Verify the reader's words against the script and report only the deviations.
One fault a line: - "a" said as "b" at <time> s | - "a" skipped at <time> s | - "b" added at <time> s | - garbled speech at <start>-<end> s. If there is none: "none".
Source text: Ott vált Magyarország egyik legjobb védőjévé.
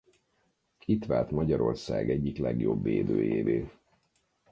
- "Ott" said as "Itt" at 0.8 s